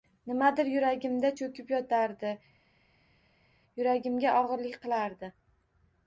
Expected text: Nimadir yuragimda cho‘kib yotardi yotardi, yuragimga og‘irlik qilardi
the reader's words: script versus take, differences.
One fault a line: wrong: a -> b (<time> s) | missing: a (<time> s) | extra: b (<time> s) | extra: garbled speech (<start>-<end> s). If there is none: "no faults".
missing: yotardi (2.3 s)